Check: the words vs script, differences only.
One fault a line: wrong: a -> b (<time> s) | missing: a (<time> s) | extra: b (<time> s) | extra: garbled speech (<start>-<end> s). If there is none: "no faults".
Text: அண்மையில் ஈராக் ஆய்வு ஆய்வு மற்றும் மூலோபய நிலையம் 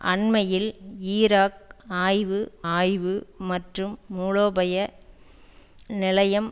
no faults